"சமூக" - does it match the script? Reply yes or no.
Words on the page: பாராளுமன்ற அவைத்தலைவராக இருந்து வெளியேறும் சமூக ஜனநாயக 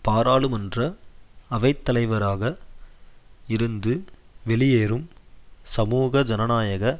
yes